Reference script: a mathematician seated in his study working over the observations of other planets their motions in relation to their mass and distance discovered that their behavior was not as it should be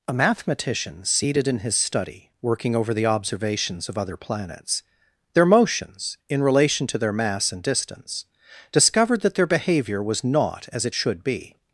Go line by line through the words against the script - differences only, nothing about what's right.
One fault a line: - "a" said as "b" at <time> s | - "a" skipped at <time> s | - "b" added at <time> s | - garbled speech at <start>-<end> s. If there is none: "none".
none